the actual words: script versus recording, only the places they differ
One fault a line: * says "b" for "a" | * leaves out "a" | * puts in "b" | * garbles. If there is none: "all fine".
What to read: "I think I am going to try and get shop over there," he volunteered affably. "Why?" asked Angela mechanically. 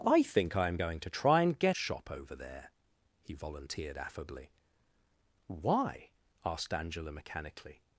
all fine